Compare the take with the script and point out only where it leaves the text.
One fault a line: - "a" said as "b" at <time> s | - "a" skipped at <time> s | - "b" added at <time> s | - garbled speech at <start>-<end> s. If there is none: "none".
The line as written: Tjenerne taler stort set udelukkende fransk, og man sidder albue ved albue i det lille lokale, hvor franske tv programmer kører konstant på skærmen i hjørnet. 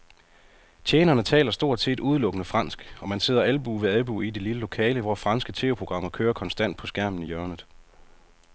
none